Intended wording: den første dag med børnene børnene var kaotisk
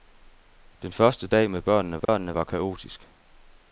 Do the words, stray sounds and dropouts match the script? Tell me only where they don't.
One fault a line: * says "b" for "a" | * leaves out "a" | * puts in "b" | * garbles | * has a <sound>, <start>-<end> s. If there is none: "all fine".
* has a dropout, 2.1-2.1 s